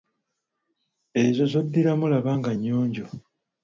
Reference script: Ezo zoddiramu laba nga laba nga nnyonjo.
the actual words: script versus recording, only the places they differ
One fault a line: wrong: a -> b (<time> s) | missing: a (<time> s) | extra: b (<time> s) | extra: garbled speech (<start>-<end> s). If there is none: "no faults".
missing: laba nga (2.5 s)